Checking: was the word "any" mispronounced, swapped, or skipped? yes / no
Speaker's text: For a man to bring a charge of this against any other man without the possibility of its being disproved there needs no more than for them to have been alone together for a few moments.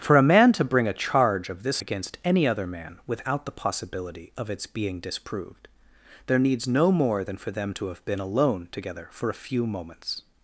no